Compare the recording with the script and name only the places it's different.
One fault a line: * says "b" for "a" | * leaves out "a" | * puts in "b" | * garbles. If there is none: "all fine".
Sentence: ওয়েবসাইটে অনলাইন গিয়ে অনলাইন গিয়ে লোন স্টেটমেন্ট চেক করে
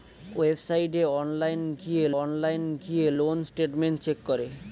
all fine